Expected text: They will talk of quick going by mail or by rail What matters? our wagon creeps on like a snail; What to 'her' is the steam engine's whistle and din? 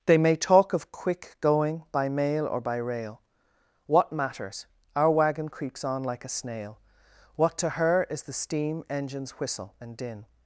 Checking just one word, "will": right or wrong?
wrong